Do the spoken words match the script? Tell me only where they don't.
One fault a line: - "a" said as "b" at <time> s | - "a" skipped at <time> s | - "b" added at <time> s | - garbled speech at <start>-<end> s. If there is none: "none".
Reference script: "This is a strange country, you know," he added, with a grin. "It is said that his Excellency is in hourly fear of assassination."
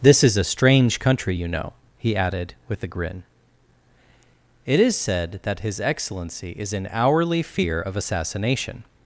none